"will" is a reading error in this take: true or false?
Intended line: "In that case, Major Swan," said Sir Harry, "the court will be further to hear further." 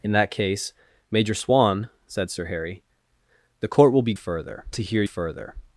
false